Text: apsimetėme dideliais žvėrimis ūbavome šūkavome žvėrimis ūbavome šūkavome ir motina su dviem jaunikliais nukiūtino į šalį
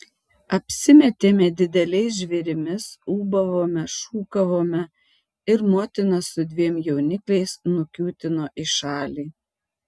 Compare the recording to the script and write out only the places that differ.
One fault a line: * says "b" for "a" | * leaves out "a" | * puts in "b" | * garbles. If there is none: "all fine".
* leaves out "žvėrimis ūbavome šūkavome"